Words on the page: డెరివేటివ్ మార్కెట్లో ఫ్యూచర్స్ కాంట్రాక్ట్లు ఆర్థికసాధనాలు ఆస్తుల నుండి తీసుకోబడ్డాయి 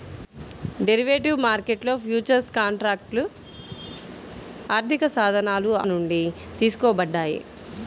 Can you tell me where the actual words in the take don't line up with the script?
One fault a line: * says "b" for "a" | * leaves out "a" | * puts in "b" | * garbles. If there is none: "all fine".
* leaves out "ఆస్తుల"